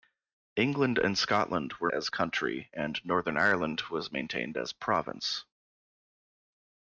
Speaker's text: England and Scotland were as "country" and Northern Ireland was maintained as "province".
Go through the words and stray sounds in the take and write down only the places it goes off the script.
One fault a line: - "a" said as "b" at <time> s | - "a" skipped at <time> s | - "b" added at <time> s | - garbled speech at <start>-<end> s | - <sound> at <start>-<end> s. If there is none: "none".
none